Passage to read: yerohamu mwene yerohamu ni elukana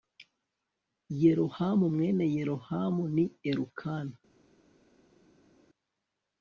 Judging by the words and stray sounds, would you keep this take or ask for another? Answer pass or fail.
pass